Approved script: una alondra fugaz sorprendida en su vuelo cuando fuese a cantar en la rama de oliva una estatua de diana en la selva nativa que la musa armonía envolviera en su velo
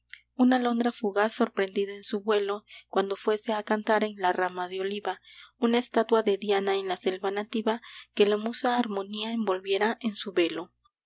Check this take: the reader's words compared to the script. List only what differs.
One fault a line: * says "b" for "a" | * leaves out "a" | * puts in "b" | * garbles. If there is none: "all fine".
all fine